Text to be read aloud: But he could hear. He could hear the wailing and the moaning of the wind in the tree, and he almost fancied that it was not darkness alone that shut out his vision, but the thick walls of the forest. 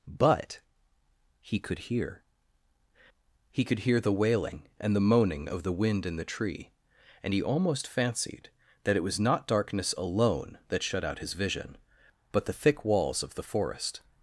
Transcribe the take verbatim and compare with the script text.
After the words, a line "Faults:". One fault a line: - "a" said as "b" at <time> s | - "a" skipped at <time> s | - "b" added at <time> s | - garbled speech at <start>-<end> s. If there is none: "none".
But he could hear. He could hear the wailing and the moaning of the wind in the tree, and he almost fancied that it was not darkness alone that shut out his vision, but the thick walls of the forest.
Faults:
none